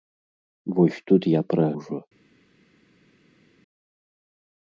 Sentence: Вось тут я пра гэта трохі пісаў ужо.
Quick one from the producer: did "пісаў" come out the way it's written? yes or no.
no